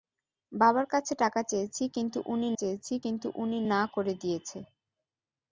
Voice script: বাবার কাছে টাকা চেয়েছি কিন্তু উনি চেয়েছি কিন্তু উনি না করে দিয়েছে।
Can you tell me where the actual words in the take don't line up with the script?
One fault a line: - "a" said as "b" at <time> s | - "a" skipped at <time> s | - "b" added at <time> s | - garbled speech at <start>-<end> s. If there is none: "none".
none